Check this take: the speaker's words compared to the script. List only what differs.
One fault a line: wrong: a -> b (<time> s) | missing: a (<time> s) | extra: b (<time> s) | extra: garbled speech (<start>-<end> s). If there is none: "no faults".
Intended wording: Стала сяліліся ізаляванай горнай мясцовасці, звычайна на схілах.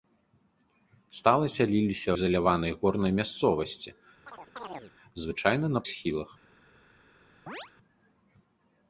no faults